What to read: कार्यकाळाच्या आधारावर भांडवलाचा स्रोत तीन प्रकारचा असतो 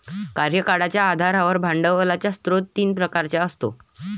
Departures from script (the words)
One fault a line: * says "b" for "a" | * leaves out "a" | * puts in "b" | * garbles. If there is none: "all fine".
all fine